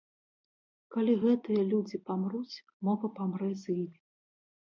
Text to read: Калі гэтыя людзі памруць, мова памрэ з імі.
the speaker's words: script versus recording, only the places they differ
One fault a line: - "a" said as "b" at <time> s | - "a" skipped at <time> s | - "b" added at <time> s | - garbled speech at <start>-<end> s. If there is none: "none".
none